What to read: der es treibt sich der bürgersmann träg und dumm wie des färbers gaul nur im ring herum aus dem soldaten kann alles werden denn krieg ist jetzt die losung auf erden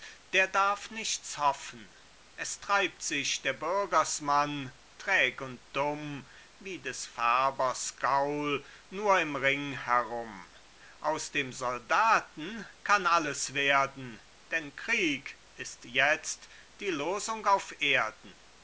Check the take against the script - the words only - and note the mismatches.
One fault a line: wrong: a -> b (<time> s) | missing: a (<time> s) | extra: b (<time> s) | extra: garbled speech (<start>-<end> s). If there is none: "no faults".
extra: darf nichts hoffen (0.5 s)